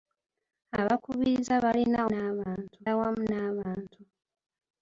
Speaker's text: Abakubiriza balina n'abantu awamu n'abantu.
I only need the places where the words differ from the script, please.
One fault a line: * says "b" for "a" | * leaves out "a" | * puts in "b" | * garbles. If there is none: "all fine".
all fine